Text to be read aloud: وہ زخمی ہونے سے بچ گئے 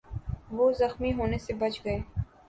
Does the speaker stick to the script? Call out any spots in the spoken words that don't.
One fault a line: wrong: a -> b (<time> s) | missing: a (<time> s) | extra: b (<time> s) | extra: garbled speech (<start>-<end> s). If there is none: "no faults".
no faults